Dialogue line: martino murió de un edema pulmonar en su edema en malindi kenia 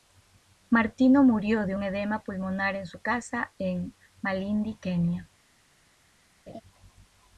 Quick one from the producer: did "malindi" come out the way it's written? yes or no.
yes